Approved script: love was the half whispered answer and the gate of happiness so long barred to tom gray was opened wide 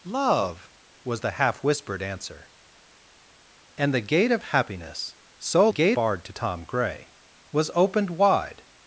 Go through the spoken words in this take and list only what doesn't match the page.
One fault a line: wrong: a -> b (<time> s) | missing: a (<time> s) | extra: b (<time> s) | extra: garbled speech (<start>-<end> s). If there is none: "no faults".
wrong: long -> gate (5.7 s)